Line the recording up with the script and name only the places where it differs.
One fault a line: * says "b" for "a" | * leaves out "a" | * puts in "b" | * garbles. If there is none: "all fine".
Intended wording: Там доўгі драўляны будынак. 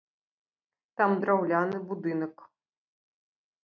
* leaves out "доўгі"